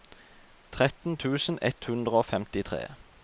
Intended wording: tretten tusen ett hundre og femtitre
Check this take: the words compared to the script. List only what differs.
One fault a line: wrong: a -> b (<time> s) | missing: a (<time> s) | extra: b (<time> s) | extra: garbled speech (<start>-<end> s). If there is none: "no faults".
no faults